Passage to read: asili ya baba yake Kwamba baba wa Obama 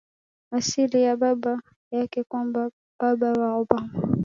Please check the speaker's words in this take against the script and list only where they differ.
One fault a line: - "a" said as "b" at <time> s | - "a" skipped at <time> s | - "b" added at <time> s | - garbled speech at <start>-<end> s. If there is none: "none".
none